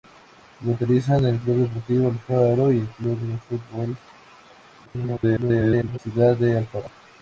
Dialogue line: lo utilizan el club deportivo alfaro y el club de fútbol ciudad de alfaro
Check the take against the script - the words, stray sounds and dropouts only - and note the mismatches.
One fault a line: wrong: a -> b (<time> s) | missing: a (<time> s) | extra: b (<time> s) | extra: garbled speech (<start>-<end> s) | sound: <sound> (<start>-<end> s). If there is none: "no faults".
extra: garbled speech (4.9-6.0 s)